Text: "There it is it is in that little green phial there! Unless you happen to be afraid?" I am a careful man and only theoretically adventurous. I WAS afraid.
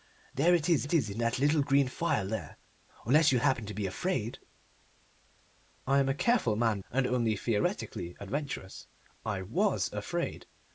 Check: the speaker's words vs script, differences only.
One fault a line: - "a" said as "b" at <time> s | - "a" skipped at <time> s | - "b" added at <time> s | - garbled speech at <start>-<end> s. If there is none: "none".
none